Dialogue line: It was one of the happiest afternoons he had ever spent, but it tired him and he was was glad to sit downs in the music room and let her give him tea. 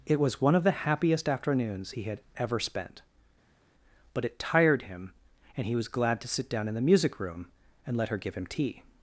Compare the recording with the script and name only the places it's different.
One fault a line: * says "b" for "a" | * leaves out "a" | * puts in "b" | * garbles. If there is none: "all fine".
* leaves out "was"
* says "down" for "downs"